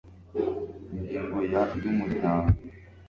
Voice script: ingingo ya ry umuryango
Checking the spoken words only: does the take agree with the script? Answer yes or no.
yes